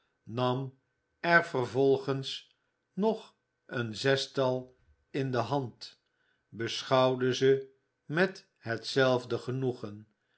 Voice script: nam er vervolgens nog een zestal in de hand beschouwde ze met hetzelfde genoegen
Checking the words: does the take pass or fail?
pass